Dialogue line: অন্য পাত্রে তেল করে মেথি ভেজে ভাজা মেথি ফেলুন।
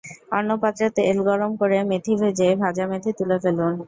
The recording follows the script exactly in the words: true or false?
false